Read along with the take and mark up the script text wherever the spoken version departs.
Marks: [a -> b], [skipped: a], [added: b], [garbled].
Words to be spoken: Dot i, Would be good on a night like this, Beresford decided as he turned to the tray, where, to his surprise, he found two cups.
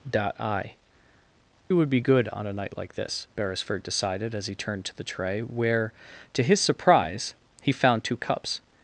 Dot i, Would be good on a night like this, Beresford decided as he turned to the tray, where, to his surprise, he found two cups.